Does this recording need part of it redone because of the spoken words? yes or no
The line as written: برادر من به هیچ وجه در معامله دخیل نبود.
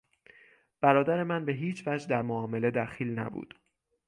no